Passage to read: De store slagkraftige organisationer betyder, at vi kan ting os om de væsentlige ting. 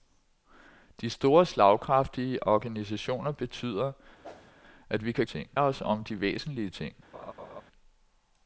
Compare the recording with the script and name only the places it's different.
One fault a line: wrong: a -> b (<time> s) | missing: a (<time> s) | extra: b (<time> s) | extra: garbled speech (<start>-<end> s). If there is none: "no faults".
no faults